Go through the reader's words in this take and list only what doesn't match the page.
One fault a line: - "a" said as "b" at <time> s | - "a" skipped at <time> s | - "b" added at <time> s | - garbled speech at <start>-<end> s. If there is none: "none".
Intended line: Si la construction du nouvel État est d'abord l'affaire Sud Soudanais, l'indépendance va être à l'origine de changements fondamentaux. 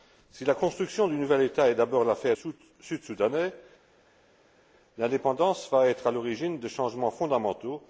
none